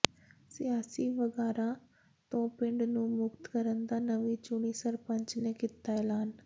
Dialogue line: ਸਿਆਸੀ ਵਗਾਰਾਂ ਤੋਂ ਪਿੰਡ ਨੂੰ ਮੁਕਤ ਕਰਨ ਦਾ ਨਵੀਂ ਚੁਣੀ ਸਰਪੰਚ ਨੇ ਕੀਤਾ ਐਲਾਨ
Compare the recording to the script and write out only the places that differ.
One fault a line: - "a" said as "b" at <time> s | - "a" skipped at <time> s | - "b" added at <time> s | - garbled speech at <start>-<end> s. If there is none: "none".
none